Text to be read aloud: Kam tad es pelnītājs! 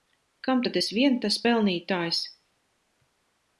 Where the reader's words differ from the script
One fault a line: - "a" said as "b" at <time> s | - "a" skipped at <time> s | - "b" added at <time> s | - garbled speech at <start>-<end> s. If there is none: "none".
- "vien tas" added at 1.0 s